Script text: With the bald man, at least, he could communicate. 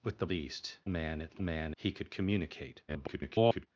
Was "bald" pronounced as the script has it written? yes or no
no